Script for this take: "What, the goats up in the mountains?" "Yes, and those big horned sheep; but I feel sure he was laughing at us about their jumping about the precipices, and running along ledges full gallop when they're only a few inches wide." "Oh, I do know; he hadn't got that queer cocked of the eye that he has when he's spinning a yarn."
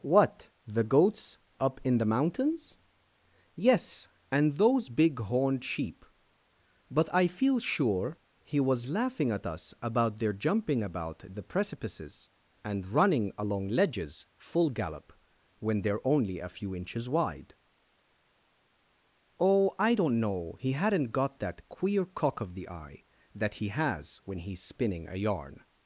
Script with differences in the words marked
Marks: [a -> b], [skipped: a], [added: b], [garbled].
"What, the goats up in the mountains?" "Yes, and those big horned sheep; but I feel sure he was laughing at us about their jumping about the precipices, and running along ledges full gallop when they're only a few inches wide." "Oh, I [do -> don't] know; he hadn't got that queer [cocked -> cock] of the eye that he has when he's spinning a yarn."